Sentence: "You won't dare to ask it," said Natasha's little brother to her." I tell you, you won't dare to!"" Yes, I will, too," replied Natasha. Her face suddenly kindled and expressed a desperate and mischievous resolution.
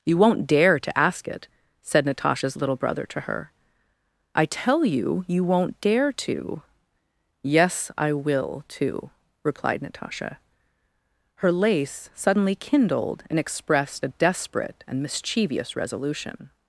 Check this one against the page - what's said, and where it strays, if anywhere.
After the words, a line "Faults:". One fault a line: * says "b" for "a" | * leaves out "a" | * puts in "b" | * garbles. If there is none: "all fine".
"You won't dare to ask it," said Natasha's little brother to her." I tell you, you won't dare to!"" Yes, I will, too," replied Natasha. Her lace suddenly kindled and expressed a desperate and mischievous resolution.
Faults:
* says "lace" for "face"